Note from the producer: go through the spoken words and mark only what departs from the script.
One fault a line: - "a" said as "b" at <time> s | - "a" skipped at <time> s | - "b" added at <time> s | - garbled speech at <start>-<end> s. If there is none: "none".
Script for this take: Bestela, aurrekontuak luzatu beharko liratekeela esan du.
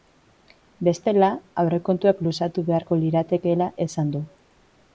none